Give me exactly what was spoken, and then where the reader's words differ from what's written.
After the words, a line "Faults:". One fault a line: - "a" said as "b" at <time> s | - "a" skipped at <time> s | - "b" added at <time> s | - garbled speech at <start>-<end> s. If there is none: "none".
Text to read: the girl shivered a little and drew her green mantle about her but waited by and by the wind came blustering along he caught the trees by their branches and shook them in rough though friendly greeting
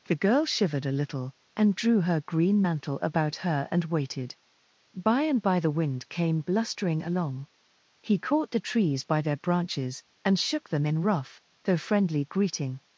the girl shivered a little and drew her green mantle about her and waited by and by the wind came blustering along he caught the trees by their branches and shook them in rough though friendly greeting
Faults:
- "but" said as "and" at 3.7 s